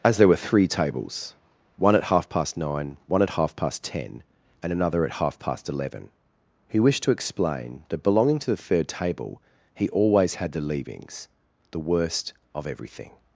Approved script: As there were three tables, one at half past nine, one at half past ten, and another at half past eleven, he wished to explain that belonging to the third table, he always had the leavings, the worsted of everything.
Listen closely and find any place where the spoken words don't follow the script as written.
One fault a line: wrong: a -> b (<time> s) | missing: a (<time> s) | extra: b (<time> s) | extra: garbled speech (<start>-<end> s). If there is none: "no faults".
wrong: worsted -> worst (11.8 s)